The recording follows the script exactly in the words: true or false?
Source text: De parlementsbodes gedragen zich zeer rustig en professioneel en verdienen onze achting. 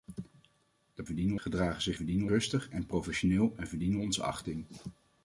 false